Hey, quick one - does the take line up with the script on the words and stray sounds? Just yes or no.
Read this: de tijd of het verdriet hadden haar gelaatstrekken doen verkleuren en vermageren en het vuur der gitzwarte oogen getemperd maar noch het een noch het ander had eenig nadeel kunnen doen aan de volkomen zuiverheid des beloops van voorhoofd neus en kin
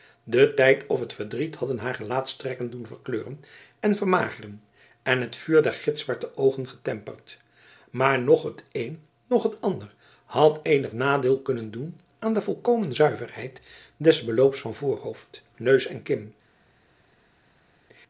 yes